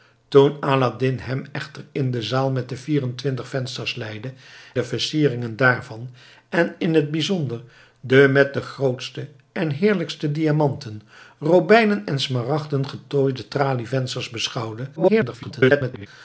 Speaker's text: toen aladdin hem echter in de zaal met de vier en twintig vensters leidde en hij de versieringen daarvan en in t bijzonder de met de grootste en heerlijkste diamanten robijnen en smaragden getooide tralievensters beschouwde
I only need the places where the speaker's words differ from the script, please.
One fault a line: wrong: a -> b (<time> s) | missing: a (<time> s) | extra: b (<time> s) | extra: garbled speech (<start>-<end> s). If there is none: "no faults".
missing: en hij (4.3 s)
extra: garbled speech (15.0-16.1 s)